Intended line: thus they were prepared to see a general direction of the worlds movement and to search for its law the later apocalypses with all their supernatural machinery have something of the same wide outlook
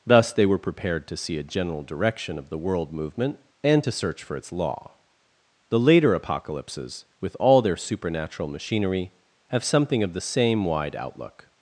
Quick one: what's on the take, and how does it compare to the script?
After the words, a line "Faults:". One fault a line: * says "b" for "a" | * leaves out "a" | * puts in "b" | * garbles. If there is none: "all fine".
thus they were prepared to see a general direction of the world movement and to search for its law the later apocalypses with all their supernatural machinery have something of the same wide outlook
Faults:
* says "world" for "worlds"